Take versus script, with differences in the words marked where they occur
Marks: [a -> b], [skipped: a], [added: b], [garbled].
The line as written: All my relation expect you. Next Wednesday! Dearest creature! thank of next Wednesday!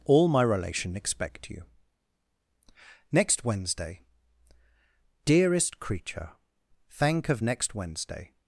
All my relation expect you. Next Wednesday! Dearest creature! thank of next Wednesday!